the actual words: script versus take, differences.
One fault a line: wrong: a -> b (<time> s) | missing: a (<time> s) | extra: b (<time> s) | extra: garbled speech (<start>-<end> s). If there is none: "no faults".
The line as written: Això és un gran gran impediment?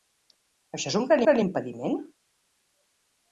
no faults